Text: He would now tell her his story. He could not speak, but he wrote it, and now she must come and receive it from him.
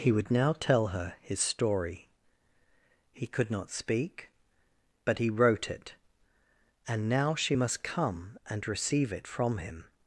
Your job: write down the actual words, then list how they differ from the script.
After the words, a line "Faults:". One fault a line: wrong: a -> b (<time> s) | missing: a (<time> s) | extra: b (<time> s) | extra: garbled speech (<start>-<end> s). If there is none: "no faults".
He would now tell her his story. He could not speak, but he wrote it, and now she must come and receive it from him.
Faults:
no faults